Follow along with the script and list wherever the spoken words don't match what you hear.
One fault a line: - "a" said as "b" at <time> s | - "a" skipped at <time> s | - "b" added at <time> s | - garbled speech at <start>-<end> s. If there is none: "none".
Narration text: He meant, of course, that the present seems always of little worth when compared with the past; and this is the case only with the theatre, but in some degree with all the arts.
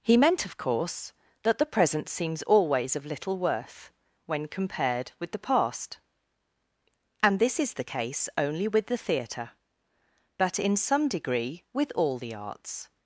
none